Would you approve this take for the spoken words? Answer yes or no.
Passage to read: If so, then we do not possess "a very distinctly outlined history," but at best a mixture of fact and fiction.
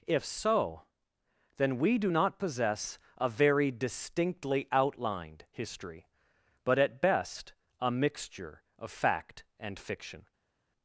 yes